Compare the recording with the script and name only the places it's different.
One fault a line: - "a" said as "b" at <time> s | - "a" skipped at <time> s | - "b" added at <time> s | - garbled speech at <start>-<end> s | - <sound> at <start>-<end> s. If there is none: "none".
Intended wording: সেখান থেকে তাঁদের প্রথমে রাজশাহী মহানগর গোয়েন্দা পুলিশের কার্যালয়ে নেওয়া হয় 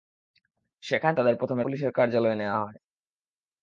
- "থেকে" skipped at 1.1 s
- "রাজশাহী মহানগর গোয়েন্দা" skipped at 1.6 s